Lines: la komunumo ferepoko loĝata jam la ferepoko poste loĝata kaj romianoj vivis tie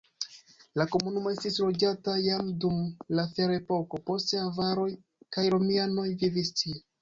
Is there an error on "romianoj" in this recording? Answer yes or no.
no